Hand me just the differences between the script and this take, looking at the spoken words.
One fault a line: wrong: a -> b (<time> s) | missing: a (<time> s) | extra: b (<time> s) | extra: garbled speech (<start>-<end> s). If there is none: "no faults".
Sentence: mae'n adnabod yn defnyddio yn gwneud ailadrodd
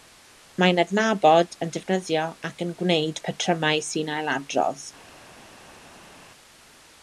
extra: ac (2.5 s)
extra: patrymau sy'n (3.3 s)